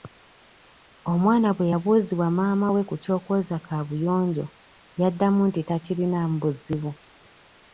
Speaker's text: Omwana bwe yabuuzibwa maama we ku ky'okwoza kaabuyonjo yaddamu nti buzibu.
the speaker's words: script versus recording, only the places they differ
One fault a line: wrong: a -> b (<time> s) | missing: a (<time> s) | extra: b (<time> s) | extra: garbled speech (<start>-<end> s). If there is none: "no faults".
extra: takirinaamu (5.7 s)